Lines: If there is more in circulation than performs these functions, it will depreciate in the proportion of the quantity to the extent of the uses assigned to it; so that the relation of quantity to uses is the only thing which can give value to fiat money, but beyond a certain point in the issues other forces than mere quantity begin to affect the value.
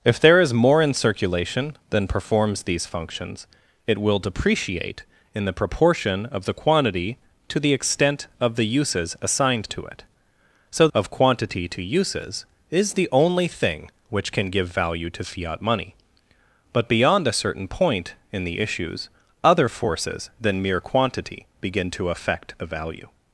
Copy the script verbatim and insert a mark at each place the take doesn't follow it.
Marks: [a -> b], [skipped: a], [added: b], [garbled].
If there is more in circulation than performs these functions, it will depreciate in the proportion of the quantity to the extent of the uses assigned to it; so [skipped: that the relation] of quantity to uses is the only thing which can give value to fiat money, but beyond a certain point in the issues other forces than mere quantity begin to affect the value.